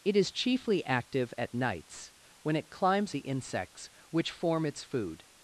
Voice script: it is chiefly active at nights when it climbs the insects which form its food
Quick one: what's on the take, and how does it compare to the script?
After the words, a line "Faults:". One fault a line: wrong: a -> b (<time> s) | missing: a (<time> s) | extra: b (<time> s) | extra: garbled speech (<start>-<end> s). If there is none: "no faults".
it is chiefly active at nights when it climbs the insects which form its food
Faults:
no faults